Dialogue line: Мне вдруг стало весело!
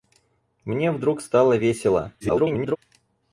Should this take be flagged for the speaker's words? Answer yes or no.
yes